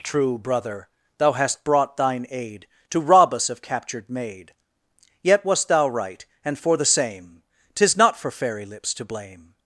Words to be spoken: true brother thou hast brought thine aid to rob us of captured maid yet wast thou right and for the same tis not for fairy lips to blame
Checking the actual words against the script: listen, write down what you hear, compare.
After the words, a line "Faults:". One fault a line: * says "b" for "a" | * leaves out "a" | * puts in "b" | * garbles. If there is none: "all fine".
true brother thou hast brought thine aid to rob us of captured maid yet wast thou right and for the same tis not for fairy lips to blame
Faults:
all fine